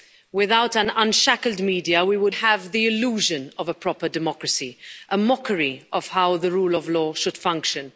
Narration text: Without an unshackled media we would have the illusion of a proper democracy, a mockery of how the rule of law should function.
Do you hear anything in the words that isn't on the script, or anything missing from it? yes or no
no